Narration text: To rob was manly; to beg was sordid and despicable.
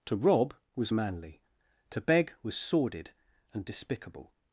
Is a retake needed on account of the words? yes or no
no